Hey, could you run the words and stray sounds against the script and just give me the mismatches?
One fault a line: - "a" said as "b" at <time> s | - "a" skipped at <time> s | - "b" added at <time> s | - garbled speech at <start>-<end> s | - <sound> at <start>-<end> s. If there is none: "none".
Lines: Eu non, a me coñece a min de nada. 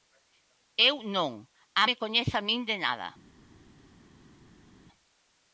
none